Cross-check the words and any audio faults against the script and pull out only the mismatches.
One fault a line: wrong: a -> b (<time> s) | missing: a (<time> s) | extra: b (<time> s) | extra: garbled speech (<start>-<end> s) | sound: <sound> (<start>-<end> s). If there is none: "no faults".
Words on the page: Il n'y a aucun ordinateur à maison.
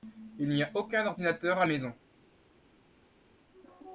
no faults